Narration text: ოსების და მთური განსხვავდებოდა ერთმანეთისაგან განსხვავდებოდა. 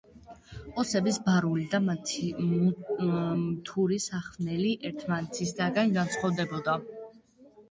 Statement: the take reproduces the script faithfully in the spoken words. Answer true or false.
false